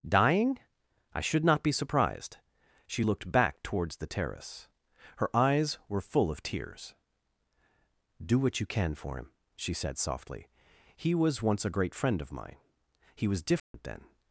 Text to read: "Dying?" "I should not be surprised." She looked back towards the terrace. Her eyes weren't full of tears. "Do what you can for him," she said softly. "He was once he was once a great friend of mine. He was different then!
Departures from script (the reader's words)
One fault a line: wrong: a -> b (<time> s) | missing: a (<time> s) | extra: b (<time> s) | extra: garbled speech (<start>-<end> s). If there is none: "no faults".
wrong: weren't -> were (5.9 s)
missing: he was once (11.6 s)